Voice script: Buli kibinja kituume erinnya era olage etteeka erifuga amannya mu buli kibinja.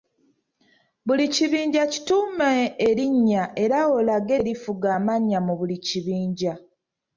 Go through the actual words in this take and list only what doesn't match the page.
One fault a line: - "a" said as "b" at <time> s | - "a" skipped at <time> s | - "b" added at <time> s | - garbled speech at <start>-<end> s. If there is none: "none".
- "etteeka" skipped at 4.3 s